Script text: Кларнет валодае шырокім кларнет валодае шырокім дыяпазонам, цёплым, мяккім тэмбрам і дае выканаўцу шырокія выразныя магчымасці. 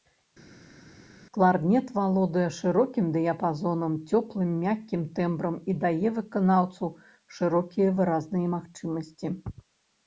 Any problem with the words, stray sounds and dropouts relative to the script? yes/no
yes